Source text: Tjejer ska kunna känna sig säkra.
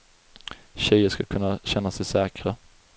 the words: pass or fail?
pass